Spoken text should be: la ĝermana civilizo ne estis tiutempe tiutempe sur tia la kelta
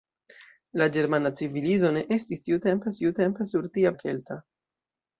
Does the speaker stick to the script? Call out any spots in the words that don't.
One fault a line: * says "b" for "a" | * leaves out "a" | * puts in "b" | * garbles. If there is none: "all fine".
all fine